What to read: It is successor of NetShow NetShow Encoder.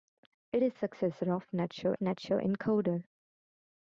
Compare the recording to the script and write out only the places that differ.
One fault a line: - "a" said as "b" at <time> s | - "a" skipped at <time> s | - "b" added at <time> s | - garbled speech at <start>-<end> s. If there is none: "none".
none